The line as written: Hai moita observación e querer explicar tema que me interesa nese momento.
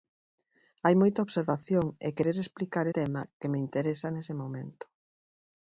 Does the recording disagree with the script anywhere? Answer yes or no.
no